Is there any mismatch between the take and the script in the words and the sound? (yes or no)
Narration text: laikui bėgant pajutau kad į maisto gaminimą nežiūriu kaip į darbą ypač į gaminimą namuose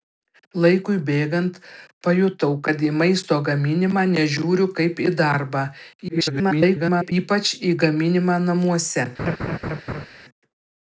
yes